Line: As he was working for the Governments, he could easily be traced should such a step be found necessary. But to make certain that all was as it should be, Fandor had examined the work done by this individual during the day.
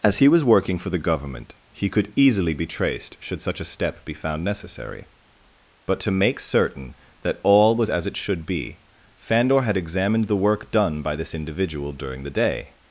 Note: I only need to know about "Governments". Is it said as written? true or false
false